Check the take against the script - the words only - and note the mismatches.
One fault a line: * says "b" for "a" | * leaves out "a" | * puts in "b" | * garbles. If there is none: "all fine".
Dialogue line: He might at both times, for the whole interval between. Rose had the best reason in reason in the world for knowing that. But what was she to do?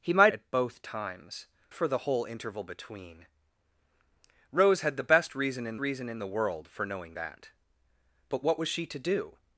all fine